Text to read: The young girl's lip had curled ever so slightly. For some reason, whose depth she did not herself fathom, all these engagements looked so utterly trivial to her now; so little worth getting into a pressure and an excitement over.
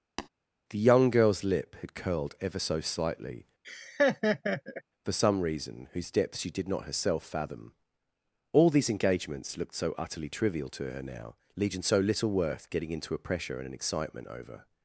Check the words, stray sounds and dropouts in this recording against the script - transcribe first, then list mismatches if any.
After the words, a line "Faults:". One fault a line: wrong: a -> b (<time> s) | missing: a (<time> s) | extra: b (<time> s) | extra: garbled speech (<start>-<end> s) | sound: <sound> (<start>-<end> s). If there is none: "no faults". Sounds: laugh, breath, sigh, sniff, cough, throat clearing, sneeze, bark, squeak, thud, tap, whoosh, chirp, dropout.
The young girl's lip had curled ever so slightly. For some reason, whose depth she did not herself fathom, all these engagements looked so utterly trivial to her now; legion so little worth getting into a pressure and an excitement over.
Faults:
sound: tap (0.2-0.3 s)
sound: laugh (3.6-4.8 s)
extra: legion (11.6 s)